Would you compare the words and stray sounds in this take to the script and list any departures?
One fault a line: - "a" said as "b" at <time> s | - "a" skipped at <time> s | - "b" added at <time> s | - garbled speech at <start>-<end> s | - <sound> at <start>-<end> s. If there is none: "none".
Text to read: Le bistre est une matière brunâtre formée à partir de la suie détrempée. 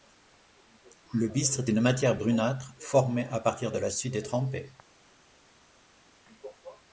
none